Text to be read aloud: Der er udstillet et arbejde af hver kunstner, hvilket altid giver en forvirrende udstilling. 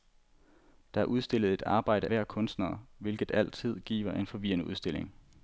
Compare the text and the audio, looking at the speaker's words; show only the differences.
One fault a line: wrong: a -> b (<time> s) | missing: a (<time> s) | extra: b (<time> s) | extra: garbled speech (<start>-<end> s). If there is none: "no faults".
missing: af (2.1 s)